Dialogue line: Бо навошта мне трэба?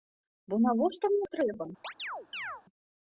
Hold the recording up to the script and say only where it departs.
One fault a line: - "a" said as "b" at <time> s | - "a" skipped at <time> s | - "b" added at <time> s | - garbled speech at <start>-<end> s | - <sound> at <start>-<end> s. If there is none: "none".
- chirp at 1.8-2.6 s